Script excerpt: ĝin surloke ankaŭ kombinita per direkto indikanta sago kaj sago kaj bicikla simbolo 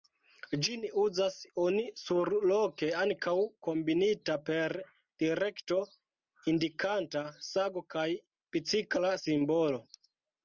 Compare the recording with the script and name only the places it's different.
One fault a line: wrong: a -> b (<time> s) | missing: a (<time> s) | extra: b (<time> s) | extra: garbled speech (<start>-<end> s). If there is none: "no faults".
extra: uzas oni (1.0 s)
missing: sago kaj (8.1 s)